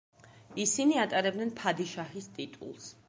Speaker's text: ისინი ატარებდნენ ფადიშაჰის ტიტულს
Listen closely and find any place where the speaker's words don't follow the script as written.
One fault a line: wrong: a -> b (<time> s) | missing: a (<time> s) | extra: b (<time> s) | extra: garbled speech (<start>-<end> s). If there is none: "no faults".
no faults